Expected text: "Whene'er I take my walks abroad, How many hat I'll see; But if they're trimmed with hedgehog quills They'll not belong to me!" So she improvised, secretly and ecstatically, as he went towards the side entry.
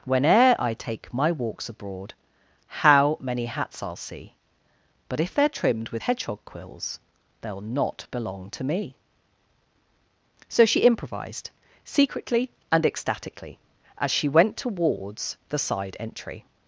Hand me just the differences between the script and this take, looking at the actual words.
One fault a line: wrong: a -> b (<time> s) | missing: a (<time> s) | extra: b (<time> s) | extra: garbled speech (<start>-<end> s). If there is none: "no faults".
wrong: hat -> hats (3.5 s)
wrong: he -> she (14.1 s)